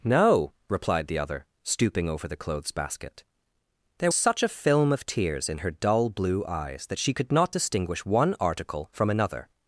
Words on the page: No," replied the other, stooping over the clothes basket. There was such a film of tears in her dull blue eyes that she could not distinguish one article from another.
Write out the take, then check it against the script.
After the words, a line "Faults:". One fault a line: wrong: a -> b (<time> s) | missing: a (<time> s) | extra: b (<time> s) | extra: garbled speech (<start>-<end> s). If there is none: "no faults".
No," replied the other, stooping over the clothes basket. There such a film of tears in her dull blue eyes that she could not distinguish one article from another.
Faults:
missing: was (4.1 s)